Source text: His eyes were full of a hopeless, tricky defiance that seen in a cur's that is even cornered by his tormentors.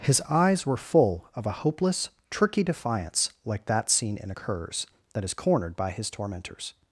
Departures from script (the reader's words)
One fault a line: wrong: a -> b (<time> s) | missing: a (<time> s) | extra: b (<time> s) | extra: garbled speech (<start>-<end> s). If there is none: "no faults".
extra: like (3.5 s)
missing: even (5.3 s)